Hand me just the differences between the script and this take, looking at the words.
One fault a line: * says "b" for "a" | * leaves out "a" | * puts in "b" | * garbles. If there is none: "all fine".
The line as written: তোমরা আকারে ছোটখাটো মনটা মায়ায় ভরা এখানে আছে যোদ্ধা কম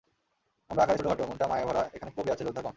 * says "আমরা" for "তোমরা"
* puts in "কবি"